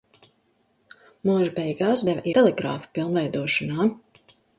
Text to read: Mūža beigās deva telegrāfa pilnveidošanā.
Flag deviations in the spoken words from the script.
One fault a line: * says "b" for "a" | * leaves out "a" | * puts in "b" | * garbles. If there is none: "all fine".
all fine